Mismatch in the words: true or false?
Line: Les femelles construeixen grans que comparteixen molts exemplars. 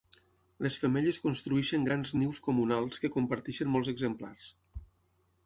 true